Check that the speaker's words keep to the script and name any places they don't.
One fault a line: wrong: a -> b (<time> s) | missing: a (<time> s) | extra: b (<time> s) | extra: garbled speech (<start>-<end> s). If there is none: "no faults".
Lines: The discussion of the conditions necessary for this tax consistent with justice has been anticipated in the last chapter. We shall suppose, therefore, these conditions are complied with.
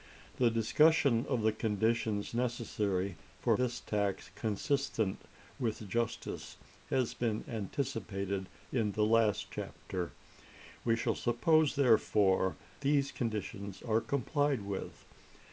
no faults